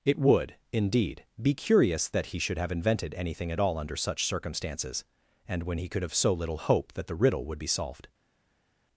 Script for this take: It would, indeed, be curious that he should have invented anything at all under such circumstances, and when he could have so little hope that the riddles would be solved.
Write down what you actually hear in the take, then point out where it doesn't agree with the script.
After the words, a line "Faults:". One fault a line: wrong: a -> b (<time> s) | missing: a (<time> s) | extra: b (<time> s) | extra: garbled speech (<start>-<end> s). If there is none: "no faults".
It would, indeed, be curious that he should have invented anything at all under such circumstances, and when he could have so little hope that the riddle would be solved.
Faults:
wrong: riddles -> riddle (7.2 s)